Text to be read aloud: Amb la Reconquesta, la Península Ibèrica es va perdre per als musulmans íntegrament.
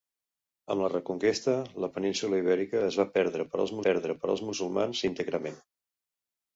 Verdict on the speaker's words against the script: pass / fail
fail